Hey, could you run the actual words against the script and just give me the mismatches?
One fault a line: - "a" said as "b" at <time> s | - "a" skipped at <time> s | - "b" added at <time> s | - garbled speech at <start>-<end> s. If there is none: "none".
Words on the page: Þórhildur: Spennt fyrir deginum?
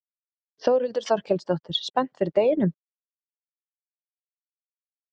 - "Þorkelsdóttir" added at 1.1 s